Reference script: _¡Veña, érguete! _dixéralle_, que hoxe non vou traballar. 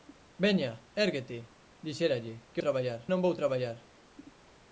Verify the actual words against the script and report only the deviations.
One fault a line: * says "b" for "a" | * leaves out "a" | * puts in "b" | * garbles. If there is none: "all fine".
* says "traballar" for "hoxe"